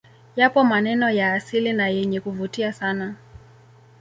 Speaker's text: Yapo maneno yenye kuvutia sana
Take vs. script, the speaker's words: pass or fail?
fail